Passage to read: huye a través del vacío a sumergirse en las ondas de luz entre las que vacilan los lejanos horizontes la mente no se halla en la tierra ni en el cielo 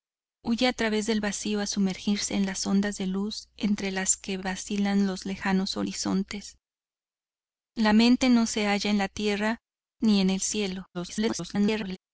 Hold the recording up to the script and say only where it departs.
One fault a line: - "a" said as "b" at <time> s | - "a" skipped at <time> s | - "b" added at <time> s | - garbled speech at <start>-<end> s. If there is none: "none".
- garbled speech at 10.9-12.0 s